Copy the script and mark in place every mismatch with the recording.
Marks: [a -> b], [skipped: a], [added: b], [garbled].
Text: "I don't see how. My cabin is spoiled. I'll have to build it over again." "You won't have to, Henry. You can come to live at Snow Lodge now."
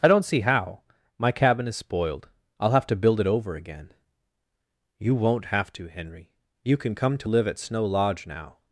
"I don't see how. My cabin is spoiled. I'll have to build it over again." "You won't have to, Henry. You can come to live at Snow Lodge now."